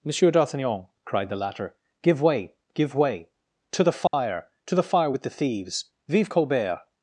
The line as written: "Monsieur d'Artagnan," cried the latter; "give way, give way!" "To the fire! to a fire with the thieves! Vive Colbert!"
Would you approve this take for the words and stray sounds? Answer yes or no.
no